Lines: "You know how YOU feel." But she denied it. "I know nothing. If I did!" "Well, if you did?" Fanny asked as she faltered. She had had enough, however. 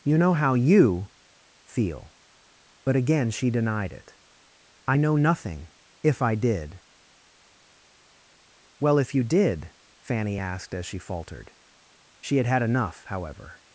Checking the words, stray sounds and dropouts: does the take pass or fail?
fail